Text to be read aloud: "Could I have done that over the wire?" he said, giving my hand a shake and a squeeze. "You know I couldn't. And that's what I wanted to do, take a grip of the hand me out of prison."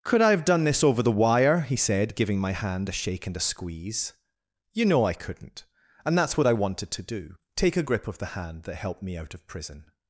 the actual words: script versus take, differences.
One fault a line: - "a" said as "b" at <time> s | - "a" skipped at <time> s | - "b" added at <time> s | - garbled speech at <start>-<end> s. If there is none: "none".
- "that" said as "this" at 0.6 s
- "that helped" added at 8.6 s